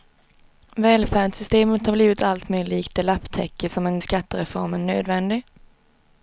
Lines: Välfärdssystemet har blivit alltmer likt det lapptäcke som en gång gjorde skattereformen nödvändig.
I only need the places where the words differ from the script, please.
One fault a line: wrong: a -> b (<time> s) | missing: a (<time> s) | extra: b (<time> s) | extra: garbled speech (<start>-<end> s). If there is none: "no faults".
missing: gång gjorde (4.0 s)